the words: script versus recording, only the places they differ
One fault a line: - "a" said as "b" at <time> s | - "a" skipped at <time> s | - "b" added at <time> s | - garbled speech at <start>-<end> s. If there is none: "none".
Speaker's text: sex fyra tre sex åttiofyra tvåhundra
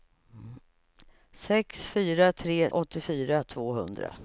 - "sex" skipped at 2.7 s